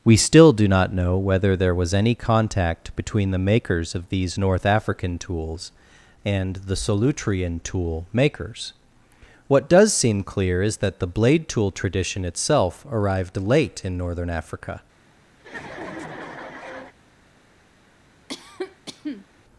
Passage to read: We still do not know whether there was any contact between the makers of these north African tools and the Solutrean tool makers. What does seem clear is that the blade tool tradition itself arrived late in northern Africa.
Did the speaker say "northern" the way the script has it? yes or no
yes